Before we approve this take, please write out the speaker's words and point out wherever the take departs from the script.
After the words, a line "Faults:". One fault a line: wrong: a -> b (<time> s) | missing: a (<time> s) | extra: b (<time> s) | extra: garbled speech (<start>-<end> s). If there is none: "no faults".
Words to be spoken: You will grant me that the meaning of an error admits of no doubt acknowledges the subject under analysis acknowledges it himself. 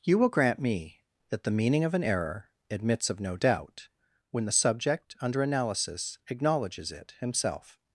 You will grant me that the meaning of an error admits of no doubt when the subject under analysis acknowledges it himself.
Faults:
wrong: acknowledges -> when (4.3 s)